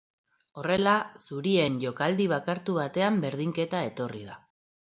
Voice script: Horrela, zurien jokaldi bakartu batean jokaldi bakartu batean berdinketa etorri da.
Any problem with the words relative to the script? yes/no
yes